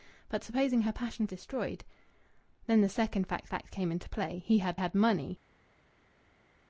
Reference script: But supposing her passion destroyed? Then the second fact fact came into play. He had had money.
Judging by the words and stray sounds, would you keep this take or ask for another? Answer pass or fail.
pass